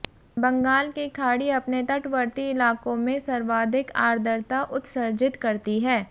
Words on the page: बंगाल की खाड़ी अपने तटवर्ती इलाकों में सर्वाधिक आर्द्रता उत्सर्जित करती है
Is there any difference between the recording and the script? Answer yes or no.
no